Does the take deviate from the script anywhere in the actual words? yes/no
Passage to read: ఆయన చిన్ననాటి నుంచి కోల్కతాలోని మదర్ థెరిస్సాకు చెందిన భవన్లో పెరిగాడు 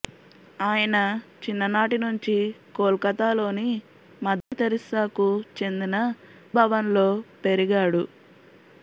no